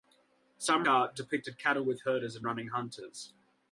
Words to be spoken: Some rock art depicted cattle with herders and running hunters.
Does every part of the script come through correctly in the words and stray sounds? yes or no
no